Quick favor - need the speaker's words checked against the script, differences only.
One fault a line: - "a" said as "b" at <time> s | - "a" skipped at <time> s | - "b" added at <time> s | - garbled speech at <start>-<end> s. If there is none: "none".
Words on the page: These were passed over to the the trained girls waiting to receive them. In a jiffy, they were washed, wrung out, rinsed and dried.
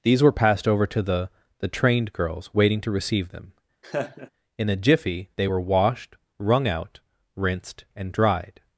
none